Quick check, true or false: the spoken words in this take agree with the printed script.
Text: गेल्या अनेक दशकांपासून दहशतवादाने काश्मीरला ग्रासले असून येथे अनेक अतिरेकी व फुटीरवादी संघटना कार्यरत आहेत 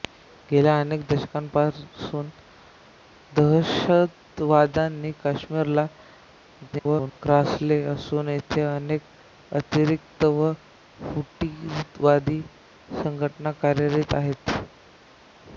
false